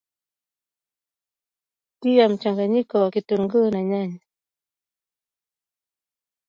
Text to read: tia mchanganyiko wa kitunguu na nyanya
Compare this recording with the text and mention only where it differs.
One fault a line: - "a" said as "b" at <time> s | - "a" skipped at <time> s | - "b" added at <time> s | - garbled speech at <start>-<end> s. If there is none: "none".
none